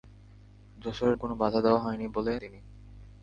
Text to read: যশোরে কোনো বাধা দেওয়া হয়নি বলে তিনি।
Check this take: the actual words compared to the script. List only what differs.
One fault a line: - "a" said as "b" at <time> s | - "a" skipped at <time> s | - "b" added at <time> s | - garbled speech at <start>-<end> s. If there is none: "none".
none